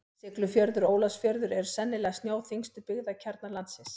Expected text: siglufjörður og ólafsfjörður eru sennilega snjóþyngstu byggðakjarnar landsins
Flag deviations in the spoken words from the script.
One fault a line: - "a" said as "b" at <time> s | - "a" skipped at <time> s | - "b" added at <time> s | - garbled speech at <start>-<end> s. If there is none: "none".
none